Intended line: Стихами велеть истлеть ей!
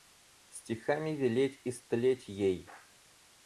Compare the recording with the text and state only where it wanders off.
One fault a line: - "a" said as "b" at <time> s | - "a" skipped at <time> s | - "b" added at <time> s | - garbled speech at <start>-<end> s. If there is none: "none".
none